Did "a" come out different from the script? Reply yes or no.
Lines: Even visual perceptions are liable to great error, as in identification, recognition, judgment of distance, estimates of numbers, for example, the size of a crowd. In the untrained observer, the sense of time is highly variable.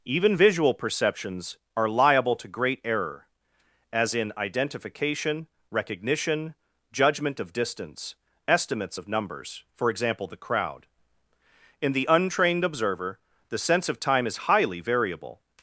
yes